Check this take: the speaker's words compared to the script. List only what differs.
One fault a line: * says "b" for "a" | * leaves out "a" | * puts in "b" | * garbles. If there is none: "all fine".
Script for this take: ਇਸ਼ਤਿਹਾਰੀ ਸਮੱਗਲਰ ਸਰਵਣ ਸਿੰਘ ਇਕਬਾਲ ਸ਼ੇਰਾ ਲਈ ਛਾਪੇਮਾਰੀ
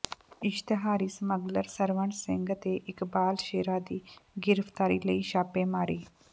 * puts in "ਤੇ"
* puts in "ਦੀ ਗਿ੍ਫ਼ਤਾਰੀ"